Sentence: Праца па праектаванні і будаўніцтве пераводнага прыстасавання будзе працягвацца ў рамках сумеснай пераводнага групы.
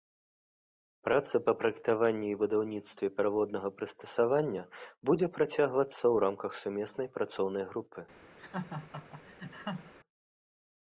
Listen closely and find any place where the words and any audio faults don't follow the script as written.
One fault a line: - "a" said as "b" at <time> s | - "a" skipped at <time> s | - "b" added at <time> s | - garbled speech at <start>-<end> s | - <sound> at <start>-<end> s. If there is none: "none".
- "пераводнага" said as "працоўнай" at 7.2 s
- laugh at 8.4-9.9 s